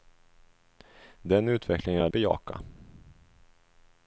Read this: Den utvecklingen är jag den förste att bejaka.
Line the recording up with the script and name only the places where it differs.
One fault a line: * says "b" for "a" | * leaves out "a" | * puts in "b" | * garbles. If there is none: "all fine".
* leaves out "den förste att"